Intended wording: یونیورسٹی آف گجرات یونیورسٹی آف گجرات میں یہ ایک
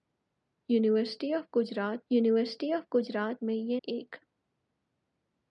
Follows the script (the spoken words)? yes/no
yes